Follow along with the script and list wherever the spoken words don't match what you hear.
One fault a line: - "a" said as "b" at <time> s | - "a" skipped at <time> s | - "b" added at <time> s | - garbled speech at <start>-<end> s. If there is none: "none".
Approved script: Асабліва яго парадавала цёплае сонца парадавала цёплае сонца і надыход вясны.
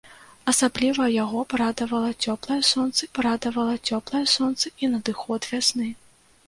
none